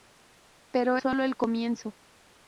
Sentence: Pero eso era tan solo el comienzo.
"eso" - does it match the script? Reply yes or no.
no